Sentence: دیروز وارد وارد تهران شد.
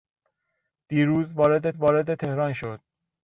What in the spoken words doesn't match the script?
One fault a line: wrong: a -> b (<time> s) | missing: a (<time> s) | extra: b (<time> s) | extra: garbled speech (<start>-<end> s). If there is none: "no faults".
no faults